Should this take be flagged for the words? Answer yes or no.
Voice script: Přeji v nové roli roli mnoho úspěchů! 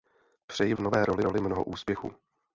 no